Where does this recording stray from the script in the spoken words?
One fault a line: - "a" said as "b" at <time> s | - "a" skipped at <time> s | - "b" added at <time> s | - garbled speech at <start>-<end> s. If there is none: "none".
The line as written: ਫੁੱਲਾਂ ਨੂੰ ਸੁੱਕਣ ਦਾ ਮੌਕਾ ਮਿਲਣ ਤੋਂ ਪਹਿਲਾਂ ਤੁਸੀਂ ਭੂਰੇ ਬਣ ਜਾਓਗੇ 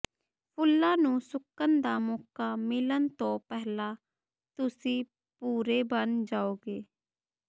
none